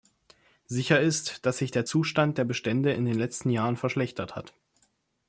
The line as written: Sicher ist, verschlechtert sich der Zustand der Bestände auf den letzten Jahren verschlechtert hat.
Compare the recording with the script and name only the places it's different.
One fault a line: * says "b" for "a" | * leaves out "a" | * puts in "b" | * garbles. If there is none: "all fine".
* says "dass" for "verschlechtert"
* says "in" for "auf"